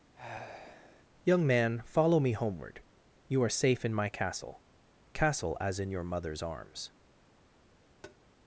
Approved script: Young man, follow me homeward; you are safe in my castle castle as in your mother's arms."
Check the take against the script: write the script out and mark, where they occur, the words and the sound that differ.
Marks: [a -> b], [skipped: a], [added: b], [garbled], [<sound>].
[sigh] Young man, follow me homeward; you are safe in my castle castle as in your mother's arms." [tap]